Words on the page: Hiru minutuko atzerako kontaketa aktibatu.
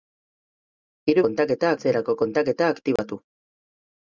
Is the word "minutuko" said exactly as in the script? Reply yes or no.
no